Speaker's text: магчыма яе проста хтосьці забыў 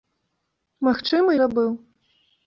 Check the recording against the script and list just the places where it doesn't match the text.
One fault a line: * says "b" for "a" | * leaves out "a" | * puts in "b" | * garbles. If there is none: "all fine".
* leaves out "яе проста хтосьці"